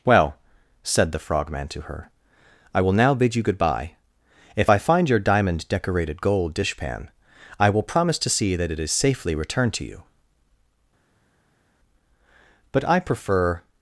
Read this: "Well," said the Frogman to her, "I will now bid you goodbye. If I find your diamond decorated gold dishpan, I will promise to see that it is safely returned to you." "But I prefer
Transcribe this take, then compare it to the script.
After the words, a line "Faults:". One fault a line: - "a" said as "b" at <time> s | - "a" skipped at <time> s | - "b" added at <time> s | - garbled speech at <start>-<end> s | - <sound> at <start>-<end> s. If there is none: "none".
"Well," said the Frogman to her, "I will now bid you goodbye. If I find your diamond decorated gold dishpan, I will promise to see that it is safely returned to you." "But I prefer
Faults:
none